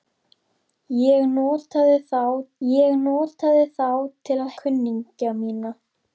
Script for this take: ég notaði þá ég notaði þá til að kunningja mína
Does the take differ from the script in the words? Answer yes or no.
no